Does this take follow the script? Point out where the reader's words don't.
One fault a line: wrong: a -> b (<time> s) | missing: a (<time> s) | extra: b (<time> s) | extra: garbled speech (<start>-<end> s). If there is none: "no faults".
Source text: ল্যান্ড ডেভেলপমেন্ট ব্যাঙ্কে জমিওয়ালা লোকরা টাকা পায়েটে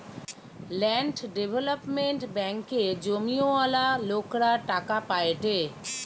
no faults